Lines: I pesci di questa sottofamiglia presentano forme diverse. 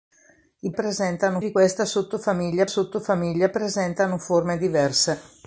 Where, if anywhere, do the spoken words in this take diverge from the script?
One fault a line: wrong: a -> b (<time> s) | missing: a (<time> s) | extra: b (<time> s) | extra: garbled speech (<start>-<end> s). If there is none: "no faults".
wrong: pesci -> presentano (0.7 s)
extra: sottofamiglia (2.6 s)